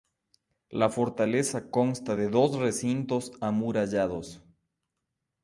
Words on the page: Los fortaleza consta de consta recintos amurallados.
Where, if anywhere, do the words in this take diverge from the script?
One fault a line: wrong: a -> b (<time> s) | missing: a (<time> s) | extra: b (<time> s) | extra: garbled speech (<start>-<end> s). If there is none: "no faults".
wrong: Los -> La (0.7 s)
wrong: consta -> dos (2.3 s)